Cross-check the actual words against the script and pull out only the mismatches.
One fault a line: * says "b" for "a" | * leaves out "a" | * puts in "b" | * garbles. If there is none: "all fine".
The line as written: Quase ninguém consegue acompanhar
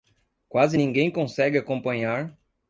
all fine